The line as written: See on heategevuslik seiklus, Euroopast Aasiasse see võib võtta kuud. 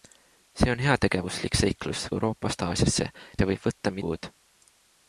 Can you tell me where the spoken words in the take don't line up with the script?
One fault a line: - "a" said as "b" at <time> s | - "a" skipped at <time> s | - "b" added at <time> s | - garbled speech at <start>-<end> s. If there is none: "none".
none